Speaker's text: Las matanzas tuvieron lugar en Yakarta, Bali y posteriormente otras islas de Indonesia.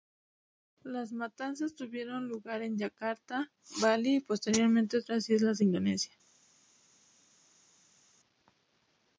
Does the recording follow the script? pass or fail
pass